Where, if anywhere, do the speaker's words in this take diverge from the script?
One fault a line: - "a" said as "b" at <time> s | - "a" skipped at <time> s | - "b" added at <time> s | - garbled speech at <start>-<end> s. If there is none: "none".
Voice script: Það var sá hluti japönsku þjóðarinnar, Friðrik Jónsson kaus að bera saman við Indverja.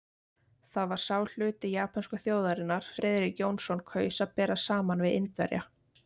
none